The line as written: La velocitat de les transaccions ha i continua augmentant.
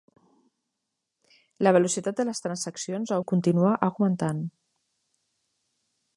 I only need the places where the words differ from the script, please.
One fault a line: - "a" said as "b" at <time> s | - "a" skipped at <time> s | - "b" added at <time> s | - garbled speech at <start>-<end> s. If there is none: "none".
none